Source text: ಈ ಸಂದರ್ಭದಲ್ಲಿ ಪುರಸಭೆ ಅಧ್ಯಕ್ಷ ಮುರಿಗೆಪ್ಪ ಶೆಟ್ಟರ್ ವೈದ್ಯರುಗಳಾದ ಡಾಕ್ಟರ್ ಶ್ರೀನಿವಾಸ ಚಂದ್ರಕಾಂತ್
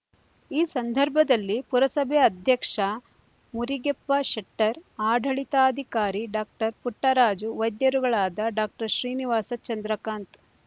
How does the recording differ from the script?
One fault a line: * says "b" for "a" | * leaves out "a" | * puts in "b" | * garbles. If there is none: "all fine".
* puts in "ಆಡಳಿತಾಧಿಕಾರಿ ಡಾಕ್ಟರ್ ಪುಟ್ಟರಾಜು"